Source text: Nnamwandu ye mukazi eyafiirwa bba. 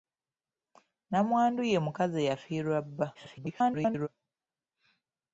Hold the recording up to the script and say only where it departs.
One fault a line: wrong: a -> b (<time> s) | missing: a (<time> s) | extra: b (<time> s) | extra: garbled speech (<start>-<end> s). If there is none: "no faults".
extra: garbled speech (3.1-4.1 s)